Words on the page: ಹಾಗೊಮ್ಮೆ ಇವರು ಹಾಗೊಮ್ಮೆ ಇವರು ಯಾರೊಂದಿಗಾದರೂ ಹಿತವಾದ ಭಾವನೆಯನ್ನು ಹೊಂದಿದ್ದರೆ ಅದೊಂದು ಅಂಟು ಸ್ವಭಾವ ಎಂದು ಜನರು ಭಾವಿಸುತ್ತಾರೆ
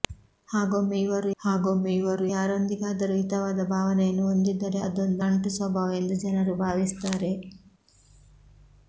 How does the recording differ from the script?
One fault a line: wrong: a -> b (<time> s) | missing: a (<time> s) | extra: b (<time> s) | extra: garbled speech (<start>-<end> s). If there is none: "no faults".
no faults